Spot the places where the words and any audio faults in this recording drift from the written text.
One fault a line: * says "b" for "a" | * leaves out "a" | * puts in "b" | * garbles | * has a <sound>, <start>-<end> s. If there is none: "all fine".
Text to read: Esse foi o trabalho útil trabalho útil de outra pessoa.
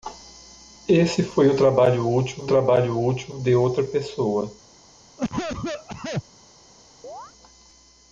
* has a cough, 5.2-6.2 s
* has a chirp, 7.0-7.3 s